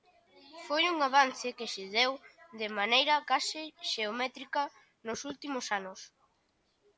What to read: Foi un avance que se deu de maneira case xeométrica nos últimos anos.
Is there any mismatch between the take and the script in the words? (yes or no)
no